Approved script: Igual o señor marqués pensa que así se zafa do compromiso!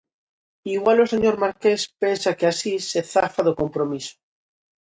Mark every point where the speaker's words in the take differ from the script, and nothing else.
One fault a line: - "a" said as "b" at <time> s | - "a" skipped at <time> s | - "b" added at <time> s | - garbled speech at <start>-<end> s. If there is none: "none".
none